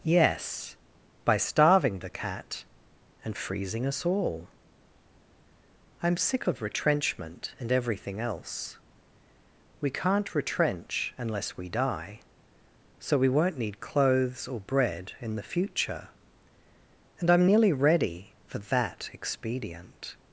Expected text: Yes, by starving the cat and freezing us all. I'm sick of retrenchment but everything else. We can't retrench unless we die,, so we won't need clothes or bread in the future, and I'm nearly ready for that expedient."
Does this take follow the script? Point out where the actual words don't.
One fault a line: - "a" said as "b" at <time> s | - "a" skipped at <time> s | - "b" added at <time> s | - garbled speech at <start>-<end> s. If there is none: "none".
- "but" said as "and" at 7.6 s